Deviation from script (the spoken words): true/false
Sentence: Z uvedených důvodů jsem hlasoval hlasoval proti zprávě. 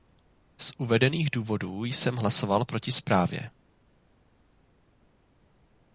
true